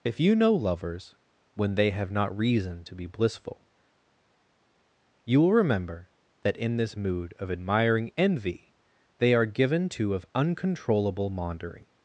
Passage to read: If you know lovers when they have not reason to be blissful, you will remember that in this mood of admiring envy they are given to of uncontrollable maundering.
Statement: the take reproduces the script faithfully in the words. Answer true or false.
true